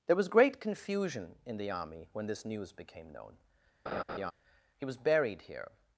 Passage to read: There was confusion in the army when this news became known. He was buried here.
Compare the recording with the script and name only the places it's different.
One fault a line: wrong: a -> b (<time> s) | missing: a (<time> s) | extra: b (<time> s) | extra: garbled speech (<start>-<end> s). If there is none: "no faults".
extra: great (0.3 s)